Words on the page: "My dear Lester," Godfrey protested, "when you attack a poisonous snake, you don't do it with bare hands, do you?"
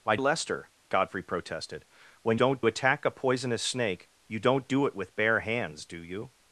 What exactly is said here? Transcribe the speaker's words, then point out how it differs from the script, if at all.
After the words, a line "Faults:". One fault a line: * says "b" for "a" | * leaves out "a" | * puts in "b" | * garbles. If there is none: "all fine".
"My Lester," Godfrey protested, "when don't attack a poisonous snake, you don't do it with bare hands, do you?"
Faults:
* leaves out "dear"
* says "don't" for "you"